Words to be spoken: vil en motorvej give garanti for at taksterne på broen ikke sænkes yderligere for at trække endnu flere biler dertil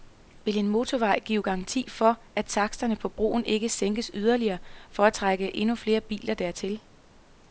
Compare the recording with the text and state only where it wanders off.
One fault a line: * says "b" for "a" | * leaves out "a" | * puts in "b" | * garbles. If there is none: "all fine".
all fine